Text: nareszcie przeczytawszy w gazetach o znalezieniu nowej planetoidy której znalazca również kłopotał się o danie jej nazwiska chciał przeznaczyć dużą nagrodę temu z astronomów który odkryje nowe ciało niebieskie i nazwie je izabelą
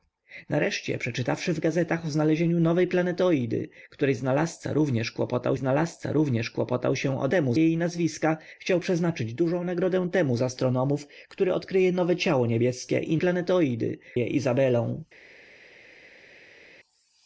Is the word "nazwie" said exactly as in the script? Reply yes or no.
no